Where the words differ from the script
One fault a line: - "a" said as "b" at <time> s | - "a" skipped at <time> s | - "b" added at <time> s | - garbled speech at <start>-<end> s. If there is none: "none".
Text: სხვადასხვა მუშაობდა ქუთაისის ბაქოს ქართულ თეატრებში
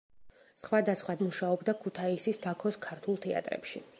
none